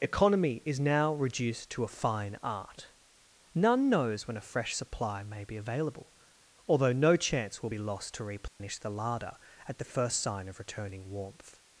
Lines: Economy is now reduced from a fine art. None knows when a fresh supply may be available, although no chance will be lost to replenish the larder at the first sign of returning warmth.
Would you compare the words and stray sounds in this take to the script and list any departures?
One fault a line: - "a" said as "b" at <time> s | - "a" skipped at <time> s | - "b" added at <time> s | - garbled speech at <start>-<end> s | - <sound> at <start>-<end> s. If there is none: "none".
- "from" said as "to" at 1.7 s
- dropout at 8.5-8.6 s